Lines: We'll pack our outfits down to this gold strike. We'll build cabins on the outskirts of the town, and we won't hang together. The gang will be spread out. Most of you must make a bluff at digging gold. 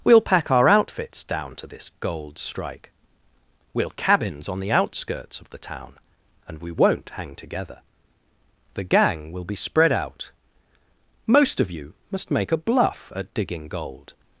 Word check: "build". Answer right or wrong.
wrong